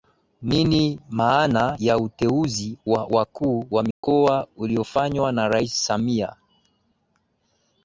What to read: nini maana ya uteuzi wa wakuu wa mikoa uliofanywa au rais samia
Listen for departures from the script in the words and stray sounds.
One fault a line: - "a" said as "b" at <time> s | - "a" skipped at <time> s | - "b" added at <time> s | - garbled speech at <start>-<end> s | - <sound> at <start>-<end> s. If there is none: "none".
- dropout at 3.9-4.0 s
- "au" said as "na" at 5.3 s